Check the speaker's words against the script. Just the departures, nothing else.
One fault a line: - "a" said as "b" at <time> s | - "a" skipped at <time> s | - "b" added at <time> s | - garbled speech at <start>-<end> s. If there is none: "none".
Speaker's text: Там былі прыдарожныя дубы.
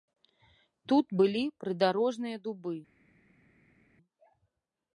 - "Там" said as "Тут" at 0.9 s